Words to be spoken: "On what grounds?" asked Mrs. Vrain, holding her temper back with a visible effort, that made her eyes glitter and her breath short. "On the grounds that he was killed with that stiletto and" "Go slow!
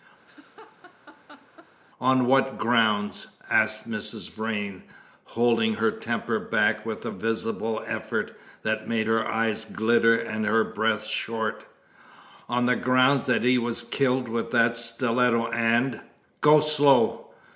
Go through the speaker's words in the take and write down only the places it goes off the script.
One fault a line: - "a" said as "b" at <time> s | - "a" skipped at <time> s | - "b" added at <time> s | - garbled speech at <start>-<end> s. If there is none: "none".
none